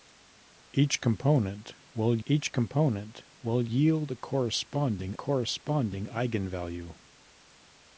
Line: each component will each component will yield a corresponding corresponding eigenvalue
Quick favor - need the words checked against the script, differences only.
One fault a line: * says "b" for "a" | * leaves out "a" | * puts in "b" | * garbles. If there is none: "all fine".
all fine